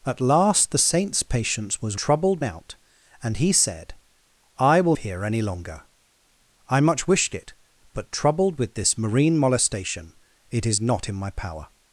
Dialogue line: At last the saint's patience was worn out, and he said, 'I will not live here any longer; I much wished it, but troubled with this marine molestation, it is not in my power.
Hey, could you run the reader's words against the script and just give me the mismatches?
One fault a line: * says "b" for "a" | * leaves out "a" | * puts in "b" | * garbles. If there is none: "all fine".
* says "troubled" for "worn"
* leaves out "not live"